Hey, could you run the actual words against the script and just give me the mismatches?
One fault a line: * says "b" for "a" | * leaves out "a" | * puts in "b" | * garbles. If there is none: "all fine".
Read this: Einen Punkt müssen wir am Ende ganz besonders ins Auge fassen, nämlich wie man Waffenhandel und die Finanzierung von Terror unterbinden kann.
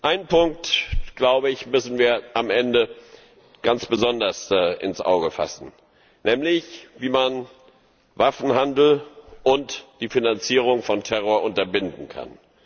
all fine